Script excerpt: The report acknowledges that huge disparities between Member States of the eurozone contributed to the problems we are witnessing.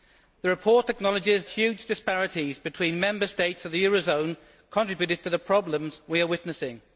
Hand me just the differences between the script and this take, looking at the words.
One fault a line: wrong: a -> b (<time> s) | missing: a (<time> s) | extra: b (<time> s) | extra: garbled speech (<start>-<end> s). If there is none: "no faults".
missing: that (1.4 s)